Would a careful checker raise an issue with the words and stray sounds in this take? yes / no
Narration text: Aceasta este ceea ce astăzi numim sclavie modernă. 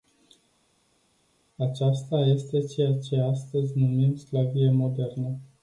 no